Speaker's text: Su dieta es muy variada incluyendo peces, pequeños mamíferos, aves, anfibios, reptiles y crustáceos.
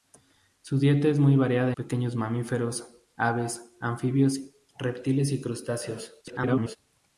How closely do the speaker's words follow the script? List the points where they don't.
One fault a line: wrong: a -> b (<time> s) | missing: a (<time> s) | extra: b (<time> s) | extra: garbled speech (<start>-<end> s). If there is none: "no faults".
missing: incluyendo peces (1.8 s)
extra: garbled speech (6.2-6.8 s)